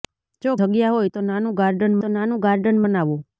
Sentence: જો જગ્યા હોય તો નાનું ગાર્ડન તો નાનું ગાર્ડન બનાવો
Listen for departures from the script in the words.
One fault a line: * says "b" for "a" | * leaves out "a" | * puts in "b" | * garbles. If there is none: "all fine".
all fine